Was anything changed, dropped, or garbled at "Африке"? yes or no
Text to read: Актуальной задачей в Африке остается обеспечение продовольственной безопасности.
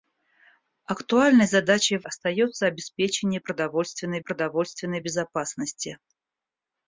yes